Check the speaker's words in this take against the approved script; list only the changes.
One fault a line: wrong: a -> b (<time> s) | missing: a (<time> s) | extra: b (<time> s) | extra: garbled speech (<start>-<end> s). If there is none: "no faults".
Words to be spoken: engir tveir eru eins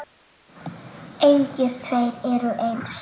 no faults